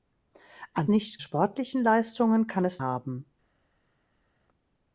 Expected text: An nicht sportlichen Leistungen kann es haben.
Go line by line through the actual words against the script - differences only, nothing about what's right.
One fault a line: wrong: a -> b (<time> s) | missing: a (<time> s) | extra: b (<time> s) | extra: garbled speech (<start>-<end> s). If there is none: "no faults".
no faults